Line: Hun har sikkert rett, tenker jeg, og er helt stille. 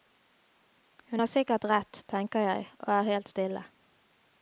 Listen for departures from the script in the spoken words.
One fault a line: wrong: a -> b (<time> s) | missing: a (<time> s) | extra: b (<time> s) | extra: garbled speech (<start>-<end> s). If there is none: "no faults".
no faults